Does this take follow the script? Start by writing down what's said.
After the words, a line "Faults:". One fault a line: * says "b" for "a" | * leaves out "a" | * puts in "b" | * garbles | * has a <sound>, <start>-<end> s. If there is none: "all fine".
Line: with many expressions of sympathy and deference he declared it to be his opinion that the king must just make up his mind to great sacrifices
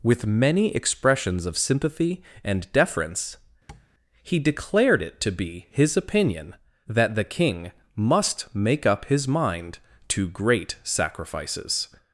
with many expressions of sympathy and deference he declared it to be his opinion that the king must make up his mind to great sacrifices
Faults:
* has a tap, 3.7-3.9 s
* leaves out "just"